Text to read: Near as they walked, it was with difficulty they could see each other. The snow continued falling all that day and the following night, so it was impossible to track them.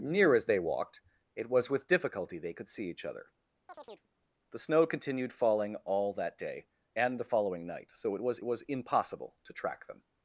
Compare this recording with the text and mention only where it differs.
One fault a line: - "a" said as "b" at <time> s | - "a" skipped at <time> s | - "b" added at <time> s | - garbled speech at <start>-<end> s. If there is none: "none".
- "was" added at 8.4 s